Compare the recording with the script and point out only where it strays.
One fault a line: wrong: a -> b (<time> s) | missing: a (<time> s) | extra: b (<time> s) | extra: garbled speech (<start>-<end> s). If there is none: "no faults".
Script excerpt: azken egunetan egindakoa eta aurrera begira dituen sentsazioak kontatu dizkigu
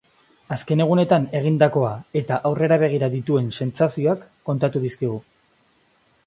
no faults